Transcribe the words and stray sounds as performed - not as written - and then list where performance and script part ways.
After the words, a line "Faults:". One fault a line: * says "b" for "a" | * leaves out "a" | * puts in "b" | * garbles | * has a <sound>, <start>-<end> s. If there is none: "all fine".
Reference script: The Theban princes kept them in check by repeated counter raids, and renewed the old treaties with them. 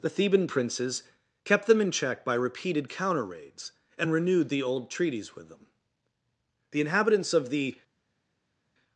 The Theban princes kept them in check by repeated counter raids, and renewed the old treaties with them. The inhabitants of the
Faults:
* puts in "The inhabitants of the"